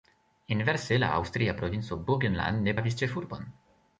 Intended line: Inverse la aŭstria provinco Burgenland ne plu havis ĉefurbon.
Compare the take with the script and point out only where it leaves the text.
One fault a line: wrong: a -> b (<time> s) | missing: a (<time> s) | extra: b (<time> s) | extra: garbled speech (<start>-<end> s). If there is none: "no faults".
missing: plu (2.8 s)